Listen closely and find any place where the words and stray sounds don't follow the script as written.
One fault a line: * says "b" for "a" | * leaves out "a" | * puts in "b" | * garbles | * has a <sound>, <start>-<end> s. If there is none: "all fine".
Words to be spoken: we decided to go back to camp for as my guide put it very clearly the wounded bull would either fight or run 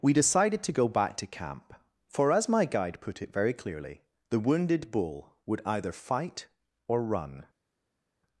all fine